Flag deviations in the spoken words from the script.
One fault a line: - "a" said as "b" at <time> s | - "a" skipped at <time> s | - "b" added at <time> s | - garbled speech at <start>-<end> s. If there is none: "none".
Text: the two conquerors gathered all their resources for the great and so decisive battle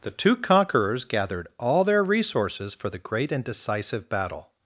- "so" skipped at 3.4 s